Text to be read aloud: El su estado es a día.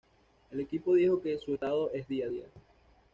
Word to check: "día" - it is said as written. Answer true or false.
true